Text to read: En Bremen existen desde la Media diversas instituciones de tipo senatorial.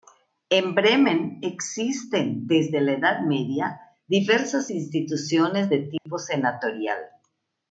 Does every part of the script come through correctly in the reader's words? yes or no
no